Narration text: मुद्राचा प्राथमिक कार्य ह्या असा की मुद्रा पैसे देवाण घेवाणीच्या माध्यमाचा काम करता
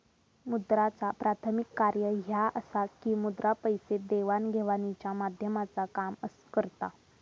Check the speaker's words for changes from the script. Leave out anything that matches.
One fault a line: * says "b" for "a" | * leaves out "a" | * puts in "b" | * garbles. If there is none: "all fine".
all fine